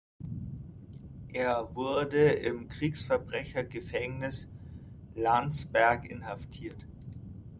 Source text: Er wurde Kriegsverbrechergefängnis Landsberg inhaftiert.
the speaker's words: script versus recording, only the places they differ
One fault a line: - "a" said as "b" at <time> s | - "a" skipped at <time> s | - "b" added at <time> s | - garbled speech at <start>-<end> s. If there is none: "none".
- "im" added at 2.3 s